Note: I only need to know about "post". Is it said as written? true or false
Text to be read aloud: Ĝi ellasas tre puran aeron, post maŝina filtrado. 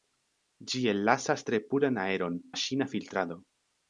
false